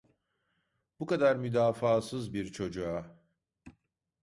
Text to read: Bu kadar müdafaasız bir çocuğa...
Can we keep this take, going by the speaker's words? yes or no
yes